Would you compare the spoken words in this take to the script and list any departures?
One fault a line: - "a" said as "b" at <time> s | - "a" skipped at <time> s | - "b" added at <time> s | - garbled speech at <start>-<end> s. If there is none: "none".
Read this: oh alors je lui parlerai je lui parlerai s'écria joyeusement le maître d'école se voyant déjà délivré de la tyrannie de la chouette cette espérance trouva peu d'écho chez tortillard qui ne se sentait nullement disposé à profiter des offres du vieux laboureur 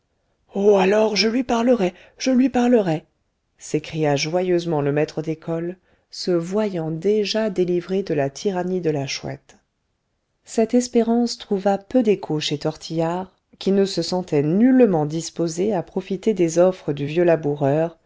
none